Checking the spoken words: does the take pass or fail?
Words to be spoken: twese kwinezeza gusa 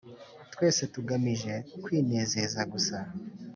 fail